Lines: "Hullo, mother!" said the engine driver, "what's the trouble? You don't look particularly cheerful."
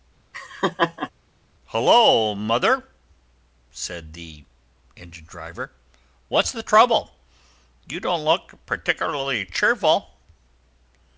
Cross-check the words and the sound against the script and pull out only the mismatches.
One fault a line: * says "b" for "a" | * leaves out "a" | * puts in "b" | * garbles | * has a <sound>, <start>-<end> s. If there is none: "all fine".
* has a laugh, 0.3-1.1 s